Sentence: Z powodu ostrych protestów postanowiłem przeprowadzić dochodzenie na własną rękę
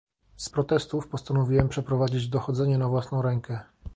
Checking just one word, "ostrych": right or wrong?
wrong